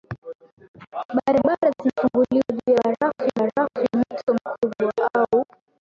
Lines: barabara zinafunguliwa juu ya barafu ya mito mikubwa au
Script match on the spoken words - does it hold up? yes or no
no